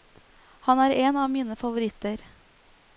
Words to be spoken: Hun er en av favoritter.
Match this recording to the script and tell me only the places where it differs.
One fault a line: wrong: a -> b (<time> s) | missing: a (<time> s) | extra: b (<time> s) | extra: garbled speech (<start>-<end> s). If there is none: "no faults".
wrong: Hun -> Han (0.7 s)
extra: mine (1.3 s)